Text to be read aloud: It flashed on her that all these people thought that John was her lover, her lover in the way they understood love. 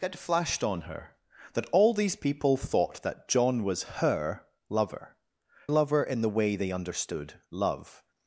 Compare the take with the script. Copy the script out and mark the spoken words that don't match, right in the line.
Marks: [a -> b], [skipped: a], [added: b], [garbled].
It flashed on her that all these people thought that John was her lover, [skipped: her] lover in the way they understood love.